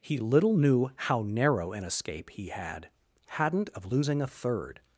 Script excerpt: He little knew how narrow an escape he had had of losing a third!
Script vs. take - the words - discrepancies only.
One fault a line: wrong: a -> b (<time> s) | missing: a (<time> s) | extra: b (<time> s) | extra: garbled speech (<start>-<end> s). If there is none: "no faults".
wrong: had -> hadn't (3.3 s)